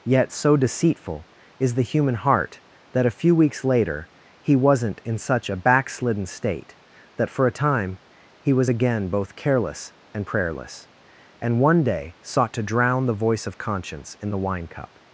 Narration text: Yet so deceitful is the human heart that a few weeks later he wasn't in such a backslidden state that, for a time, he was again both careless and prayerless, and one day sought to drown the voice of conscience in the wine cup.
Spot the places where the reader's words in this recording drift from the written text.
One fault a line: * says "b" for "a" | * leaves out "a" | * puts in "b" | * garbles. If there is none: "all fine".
all fine